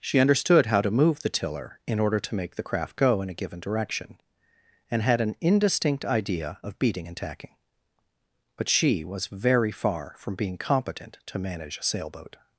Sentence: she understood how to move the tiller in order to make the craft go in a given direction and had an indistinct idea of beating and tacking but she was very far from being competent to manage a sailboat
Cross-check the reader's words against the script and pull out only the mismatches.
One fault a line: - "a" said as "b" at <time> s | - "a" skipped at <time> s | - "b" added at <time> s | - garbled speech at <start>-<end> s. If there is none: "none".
none